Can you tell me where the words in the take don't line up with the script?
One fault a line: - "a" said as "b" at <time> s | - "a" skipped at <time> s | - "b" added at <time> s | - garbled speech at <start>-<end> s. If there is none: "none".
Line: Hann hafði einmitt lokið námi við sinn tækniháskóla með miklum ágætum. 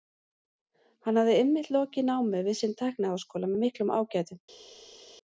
none